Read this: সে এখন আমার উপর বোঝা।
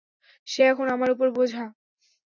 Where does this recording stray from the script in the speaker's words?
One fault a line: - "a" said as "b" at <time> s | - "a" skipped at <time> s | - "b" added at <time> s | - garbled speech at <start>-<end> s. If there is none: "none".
none